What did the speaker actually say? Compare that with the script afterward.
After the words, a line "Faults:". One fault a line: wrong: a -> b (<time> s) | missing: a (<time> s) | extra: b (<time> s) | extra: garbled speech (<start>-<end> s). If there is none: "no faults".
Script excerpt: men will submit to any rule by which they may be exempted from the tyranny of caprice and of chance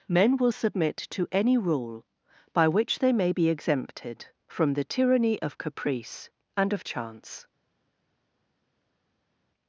men will submit to any rule by which they may be exempted from the tyranny of caprice and of chance
Faults:
no faults